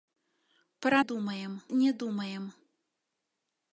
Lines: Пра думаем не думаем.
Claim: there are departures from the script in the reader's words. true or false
false